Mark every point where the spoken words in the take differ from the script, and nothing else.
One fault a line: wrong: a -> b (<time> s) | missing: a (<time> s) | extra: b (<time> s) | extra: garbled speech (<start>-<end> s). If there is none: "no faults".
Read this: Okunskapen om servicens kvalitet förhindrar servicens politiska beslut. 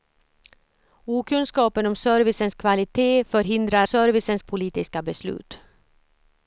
no faults